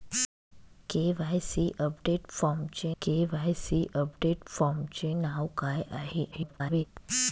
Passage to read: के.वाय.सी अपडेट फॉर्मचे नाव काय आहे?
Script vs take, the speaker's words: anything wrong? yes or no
yes